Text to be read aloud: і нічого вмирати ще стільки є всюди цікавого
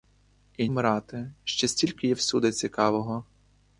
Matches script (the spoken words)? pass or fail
fail